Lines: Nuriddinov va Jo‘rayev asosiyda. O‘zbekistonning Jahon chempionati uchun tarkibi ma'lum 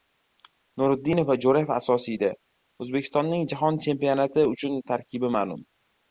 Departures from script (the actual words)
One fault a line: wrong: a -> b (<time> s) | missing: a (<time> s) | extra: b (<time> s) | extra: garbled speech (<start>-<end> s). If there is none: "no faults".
no faults